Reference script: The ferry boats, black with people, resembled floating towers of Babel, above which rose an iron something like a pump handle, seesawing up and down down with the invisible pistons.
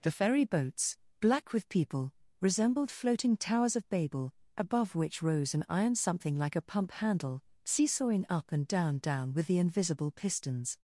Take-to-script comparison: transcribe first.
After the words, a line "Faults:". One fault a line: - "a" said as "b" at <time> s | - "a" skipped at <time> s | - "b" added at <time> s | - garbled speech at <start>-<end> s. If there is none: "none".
The ferry boats, black with people, resembled floating towers of Babel, above which rose an iron something like a pump handle, seesawing up and down down with the invisible pistons.
Faults:
none